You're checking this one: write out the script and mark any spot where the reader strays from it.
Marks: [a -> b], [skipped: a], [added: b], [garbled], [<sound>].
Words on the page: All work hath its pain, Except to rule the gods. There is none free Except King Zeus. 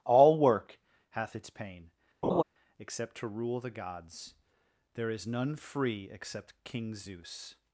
All work hath its pain, [laugh] Except to rule the gods. There is none free Except King Zeus.